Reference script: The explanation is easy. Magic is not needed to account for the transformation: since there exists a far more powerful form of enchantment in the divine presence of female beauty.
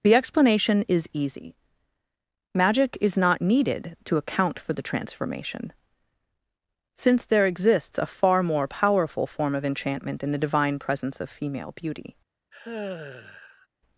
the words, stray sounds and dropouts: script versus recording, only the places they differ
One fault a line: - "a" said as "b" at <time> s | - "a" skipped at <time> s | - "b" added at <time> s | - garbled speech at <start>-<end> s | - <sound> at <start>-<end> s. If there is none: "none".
- sigh at 12.5-13.7 s